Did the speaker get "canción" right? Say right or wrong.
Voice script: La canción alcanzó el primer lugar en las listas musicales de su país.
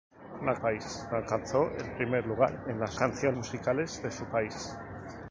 wrong